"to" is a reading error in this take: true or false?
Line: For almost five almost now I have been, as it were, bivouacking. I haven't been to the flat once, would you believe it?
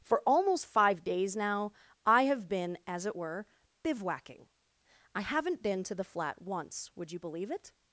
false